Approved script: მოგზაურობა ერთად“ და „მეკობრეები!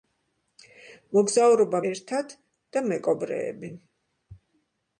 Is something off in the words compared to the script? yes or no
no